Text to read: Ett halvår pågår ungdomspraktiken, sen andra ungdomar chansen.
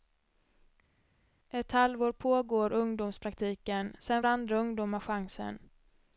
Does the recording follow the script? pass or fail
pass